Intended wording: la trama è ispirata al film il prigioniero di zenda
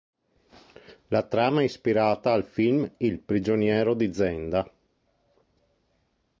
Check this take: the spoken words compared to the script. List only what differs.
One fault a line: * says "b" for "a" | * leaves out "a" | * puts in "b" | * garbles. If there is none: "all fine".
all fine